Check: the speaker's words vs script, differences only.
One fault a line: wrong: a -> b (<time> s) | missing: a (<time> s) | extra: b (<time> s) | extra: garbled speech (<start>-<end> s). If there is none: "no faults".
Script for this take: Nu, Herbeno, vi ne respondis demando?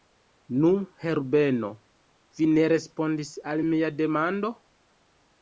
extra: al mia (3.5 s)